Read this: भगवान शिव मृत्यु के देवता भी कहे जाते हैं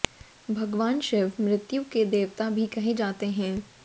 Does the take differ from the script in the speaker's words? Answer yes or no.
no